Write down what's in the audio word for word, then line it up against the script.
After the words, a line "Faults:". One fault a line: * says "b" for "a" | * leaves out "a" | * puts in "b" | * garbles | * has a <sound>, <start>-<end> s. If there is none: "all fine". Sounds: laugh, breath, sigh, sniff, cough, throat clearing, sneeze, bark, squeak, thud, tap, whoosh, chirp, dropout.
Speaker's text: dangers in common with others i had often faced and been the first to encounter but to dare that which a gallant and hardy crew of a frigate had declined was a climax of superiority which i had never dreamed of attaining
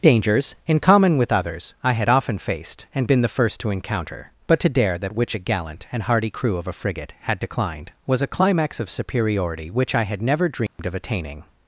dangers in common with others i had often faced and been the first to encounter but to dare that which a gallant and hardy crew of a frigate had declined was a climax of superiority which i had never dreamed of attaining
Faults:
* has a dropout, 10.7-10.8 s